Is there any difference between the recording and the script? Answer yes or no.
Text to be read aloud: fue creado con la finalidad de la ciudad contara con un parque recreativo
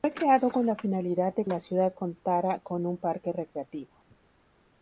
no